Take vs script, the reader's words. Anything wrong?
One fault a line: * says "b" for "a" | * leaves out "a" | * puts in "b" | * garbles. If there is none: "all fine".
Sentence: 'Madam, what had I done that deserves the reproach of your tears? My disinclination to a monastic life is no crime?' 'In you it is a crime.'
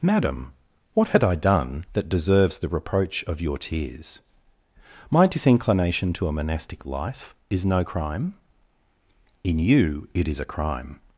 all fine